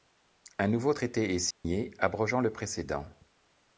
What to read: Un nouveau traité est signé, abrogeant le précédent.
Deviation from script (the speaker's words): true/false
false